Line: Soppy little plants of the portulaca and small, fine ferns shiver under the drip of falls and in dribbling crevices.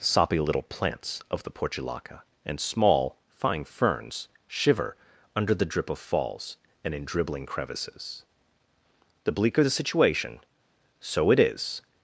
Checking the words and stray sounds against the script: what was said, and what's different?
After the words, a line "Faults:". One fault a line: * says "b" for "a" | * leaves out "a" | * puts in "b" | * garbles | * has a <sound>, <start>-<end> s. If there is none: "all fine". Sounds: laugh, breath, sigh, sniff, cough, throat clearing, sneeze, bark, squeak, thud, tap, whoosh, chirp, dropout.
Soppy little plants of the portulaca and small, fine ferns shiver under the drip of falls and in dribbling crevices. The bleaker the situation, so it is
Faults:
* puts in "The bleaker the situation so it is"